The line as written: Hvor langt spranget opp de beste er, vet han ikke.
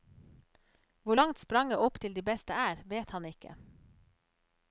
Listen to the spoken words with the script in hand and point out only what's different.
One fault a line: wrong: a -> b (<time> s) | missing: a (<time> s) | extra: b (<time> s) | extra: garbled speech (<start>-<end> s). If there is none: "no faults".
extra: til (2.0 s)